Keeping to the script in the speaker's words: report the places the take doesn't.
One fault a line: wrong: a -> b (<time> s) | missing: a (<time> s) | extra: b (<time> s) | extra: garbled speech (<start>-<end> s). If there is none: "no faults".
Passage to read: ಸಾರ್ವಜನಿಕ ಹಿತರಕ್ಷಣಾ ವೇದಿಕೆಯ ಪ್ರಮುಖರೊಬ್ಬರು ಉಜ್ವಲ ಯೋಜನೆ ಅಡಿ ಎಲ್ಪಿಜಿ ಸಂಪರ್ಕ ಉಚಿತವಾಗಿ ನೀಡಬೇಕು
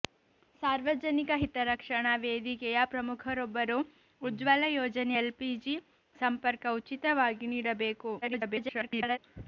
missing: ಅಡಿ (5.2 s)
extra: garbled speech (8.2-9.2 s)